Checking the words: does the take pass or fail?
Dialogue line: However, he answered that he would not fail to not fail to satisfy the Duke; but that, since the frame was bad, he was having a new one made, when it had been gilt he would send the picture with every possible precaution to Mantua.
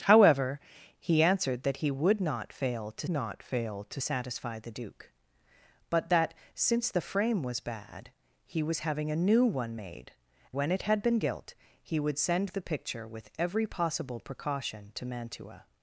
pass